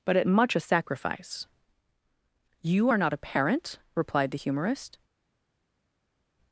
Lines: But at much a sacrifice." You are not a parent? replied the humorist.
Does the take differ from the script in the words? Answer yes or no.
no